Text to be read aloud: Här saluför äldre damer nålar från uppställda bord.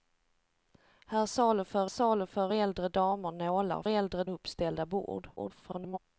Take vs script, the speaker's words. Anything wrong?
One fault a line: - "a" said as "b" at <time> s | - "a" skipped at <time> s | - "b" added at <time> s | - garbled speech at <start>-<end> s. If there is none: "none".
- "saluför" added at 1.9 s
- "från" said as "äldre" at 3.9 s
- garbled speech at 5.4-6.0 s